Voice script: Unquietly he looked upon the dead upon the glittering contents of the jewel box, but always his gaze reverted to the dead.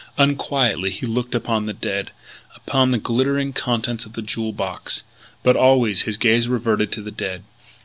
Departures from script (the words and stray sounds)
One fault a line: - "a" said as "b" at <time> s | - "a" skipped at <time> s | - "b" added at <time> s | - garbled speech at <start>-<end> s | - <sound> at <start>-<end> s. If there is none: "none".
none